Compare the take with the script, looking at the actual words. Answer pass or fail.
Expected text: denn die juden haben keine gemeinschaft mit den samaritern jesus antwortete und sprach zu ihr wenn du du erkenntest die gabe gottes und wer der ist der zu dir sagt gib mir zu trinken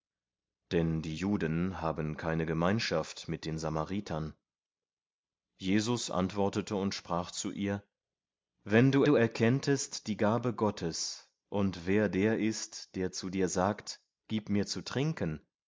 pass